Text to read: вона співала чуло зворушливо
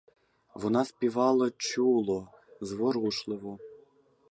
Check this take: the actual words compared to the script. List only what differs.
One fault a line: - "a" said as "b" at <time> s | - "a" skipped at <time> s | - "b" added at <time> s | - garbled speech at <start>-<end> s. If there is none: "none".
none